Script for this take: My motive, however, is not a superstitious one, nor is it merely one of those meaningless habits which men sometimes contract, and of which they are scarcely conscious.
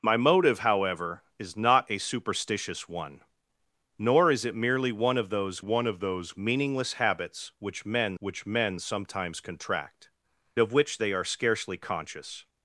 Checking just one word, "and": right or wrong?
wrong